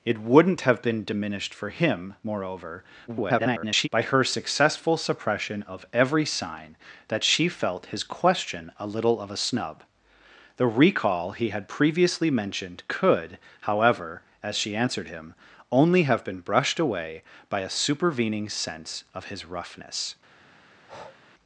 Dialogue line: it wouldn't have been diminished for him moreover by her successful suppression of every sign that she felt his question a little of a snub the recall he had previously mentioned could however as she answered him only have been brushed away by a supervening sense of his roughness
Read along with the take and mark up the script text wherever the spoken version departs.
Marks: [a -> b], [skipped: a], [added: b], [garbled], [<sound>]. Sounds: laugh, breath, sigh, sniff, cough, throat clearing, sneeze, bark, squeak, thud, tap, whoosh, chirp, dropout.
it wouldn't have been diminished for him moreover [garbled] by her successful suppression of every sign that she felt his question a little of a snub the recall he had previously mentioned could however as she answered him only have been brushed away by a supervening sense of his roughness [breath]